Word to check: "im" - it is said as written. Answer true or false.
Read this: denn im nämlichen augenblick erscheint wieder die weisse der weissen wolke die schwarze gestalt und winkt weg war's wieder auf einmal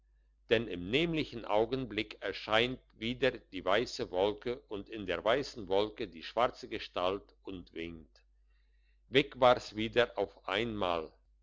true